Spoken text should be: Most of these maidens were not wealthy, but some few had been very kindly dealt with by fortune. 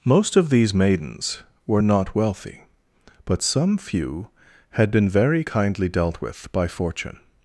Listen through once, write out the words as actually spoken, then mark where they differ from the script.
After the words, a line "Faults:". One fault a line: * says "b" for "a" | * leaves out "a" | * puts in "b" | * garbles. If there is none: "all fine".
Most of these maidens were not wealthy, but some few had been very kindly dealt with by fortune.
Faults:
all fine